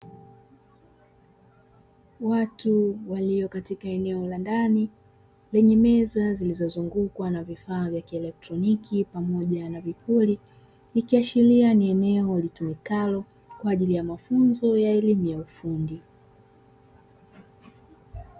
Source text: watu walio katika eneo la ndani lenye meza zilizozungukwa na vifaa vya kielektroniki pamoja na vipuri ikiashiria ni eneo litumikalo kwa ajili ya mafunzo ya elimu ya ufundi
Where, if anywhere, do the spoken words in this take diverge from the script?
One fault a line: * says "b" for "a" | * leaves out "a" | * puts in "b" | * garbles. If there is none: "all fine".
all fine